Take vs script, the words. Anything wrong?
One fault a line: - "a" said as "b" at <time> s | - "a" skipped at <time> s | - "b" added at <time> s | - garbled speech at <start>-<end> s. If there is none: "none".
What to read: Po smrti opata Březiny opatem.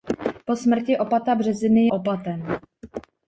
none